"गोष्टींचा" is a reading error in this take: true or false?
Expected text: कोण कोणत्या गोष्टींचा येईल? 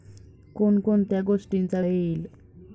false